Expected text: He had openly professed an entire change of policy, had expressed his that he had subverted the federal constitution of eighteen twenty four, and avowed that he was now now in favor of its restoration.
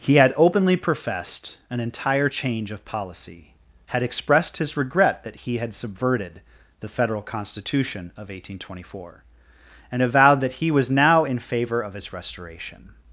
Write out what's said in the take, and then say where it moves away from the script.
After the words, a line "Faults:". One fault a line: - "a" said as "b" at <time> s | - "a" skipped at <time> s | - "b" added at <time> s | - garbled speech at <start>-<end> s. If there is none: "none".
He had openly professed an entire change of policy, had expressed his regret that he had subverted the federal constitution of eighteen twenty four, and avowed that he was now in favor of its restoration.
Faults:
- "regret" added at 4.8 s
- "now" skipped at 11.2 s